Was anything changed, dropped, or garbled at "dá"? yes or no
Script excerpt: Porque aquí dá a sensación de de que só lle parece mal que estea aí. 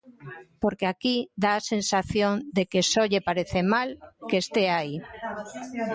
no